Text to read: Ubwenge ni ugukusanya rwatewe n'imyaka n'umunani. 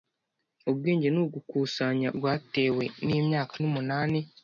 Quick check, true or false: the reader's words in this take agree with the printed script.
true